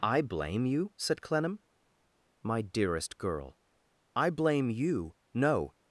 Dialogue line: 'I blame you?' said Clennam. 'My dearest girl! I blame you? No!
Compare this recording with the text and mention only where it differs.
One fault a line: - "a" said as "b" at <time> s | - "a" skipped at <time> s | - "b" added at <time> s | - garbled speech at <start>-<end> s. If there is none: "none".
none